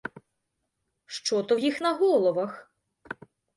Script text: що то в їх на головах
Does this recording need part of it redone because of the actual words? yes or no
no